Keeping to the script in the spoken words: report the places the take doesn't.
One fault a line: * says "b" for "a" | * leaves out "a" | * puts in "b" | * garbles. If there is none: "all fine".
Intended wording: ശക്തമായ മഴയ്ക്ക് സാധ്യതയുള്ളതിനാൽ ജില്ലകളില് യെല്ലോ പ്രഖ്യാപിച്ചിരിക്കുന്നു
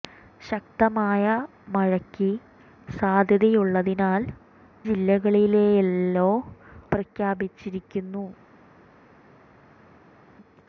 all fine